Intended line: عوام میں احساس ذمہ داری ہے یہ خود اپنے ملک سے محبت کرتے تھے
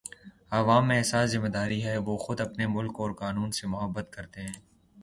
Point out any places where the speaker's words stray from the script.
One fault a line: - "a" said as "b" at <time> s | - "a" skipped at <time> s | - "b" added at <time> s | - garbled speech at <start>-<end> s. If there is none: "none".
- "یہ" said as "وہ" at 2.0 s
- "اور قانون" added at 3.0 s
- "تھے" said as "ہیں" at 4.4 s